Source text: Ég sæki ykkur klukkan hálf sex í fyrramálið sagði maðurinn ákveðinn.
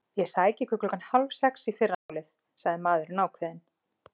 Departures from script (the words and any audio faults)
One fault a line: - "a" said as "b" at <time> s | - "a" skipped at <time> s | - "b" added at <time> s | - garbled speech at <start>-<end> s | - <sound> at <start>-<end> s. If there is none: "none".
- dropout at 1.9-2.1 s